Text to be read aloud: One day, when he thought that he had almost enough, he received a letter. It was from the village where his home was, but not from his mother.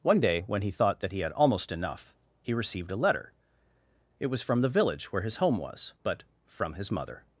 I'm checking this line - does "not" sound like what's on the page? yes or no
no